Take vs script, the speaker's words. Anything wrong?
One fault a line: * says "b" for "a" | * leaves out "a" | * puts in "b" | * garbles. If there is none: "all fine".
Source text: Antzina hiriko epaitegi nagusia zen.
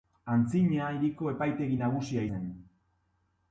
all fine